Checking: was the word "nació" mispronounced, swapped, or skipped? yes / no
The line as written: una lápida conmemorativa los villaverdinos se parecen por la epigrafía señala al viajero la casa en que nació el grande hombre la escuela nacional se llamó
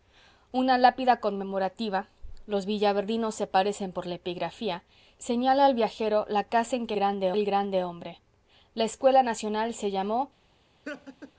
yes